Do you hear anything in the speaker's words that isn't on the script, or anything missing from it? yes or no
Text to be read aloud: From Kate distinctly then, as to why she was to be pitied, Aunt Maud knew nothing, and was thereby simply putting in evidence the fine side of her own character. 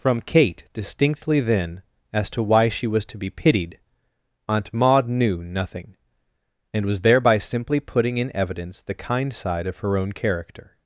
yes